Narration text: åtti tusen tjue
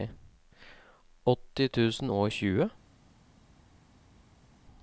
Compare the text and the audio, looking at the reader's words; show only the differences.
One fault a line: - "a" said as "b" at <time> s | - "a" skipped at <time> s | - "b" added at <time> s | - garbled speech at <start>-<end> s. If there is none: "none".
- "og" added at 2.1 s